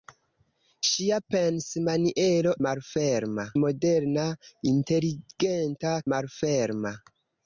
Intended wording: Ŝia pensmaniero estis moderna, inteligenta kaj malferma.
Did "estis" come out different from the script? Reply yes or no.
yes